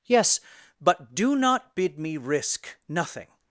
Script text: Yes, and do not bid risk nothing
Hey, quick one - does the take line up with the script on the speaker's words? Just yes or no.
no